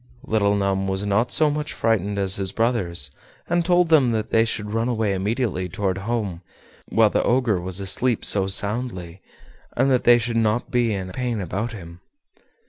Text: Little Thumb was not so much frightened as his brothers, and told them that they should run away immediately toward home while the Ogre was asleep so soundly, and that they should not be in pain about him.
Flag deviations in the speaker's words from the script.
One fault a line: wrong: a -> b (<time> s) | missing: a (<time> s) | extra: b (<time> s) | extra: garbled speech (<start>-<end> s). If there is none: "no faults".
no faults